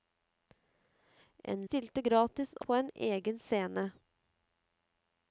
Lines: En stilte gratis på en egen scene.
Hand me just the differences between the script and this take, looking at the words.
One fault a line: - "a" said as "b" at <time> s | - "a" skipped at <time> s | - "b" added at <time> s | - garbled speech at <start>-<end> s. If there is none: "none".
none